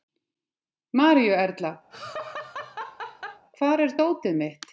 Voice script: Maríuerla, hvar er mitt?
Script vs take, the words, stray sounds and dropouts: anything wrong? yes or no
yes